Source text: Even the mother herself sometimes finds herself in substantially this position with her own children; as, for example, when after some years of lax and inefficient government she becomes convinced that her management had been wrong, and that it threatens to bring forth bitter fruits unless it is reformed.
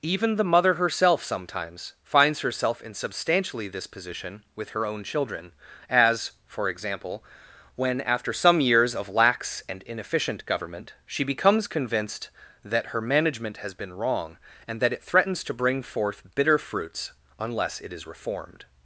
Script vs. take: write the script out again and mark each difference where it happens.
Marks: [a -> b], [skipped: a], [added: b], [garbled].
Even the mother herself sometimes finds herself in substantially this position with her own children; as, for example, when after some years of lax and inefficient government she becomes convinced that her management [had -> has] been wrong, and that it threatens to bring forth bitter fruits unless it is reformed.